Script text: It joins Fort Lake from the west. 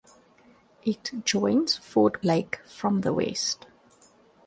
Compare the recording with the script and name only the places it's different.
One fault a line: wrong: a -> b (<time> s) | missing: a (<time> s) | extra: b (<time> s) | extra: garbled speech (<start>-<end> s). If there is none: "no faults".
no faults